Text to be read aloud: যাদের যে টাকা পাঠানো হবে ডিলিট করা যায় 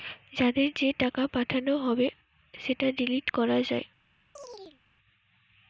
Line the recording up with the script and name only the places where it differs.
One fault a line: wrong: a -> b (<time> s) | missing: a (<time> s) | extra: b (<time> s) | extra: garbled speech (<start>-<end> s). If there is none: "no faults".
extra: সেটা (2.5 s)